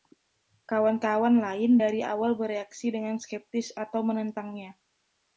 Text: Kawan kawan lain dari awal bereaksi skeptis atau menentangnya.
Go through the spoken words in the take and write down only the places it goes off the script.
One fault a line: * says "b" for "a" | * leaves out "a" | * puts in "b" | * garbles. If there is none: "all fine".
* puts in "dengan"